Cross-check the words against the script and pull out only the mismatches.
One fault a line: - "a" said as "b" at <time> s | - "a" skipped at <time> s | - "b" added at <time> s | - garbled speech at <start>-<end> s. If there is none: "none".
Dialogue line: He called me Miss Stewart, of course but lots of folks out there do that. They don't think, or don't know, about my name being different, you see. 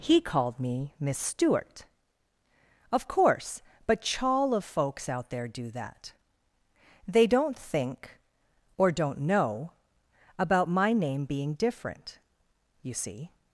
- "lots" said as "chawl" at 4.0 s